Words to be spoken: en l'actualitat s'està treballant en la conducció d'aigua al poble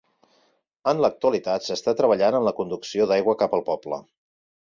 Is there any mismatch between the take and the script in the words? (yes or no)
yes